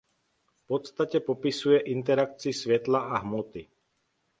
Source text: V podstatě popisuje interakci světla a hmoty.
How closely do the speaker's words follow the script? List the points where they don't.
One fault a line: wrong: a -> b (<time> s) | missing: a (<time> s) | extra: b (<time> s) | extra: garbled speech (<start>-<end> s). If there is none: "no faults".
no faults